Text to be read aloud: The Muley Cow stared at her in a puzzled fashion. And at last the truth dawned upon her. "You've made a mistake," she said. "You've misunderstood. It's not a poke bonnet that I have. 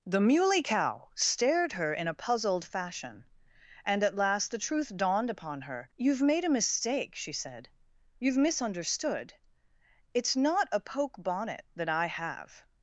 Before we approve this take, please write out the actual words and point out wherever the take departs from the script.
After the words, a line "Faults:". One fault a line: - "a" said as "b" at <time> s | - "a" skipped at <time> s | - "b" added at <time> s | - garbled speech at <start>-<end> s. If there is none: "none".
The Muley Cow stared her in a puzzled fashion. And at last the truth dawned upon her. "You've made a mistake," she said. "You've misunderstood. It's not a poke bonnet that I have.
Faults:
- "at" skipped at 1.7 s